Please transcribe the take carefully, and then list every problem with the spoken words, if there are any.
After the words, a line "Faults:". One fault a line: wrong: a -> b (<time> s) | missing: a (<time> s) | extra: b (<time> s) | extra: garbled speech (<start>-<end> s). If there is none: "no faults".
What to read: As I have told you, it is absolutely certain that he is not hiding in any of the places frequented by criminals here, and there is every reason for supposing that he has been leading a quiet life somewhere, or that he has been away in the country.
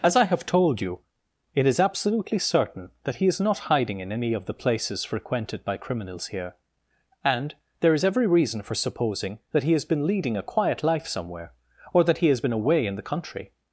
As I have told you, it is absolutely certain that he is not hiding in any of the places frequented by criminals here, and there is every reason for supposing that he has been leading a quiet life somewhere, or that he has been away in the country.
Faults:
no faults